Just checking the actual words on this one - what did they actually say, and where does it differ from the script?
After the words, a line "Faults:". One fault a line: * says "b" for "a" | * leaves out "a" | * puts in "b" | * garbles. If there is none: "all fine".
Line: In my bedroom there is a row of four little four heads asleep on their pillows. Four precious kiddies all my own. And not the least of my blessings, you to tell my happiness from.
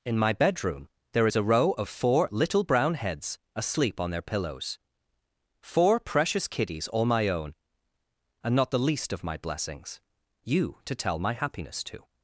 In my bedroom there is a row of four little brown heads asleep on their pillows. Four precious kiddies all my own. And not the least of my blessings, you to tell my happiness to.
Faults:
* says "brown" for "four"
* says "to" for "from"